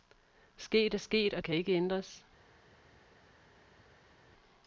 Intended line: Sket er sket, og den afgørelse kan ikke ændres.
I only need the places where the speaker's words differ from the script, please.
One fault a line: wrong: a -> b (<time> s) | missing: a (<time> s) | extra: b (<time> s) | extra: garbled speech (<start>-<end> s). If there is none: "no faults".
missing: den afgørelse (1.4 s)